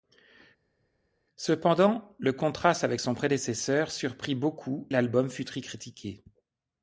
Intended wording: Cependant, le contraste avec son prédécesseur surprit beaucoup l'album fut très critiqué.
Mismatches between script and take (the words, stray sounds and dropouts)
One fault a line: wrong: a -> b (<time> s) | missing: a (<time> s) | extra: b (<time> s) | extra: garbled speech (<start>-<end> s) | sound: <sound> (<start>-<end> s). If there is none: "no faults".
no faults